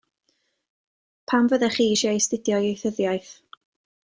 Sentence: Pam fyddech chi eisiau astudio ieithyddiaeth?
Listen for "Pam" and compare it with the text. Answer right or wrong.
right